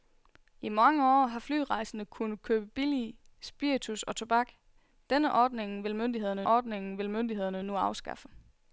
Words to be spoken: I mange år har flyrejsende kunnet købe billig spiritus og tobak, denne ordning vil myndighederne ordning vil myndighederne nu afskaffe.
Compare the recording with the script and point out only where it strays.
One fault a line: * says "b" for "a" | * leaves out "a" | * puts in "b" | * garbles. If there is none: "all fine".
all fine